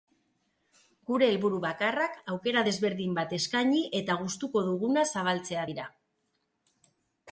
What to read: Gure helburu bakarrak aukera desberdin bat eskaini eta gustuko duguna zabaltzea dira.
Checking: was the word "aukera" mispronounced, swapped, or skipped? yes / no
no